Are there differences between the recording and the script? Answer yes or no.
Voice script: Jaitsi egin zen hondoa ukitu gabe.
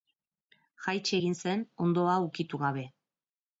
no